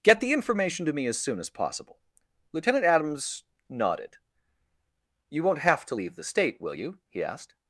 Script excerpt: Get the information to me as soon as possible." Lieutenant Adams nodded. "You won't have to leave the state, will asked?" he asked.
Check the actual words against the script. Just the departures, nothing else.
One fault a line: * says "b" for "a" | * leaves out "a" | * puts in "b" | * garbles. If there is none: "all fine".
* says "you" for "asked"